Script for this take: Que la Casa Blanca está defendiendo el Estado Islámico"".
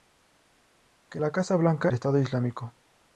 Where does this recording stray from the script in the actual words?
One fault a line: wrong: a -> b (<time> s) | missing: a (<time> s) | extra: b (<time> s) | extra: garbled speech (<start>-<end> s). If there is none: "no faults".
missing: está defendiendo el (1.9 s)